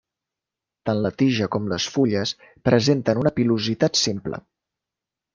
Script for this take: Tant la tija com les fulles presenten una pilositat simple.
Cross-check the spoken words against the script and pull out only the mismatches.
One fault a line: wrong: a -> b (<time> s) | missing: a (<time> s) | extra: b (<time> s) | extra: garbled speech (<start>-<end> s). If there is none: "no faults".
no faults